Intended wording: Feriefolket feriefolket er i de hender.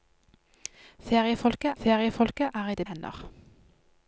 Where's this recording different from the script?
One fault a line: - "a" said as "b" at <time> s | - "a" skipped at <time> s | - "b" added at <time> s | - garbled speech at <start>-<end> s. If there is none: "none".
none